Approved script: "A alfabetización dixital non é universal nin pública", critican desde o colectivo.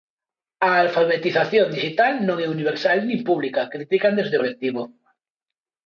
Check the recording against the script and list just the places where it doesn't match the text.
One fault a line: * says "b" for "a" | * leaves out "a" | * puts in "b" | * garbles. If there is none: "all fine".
all fine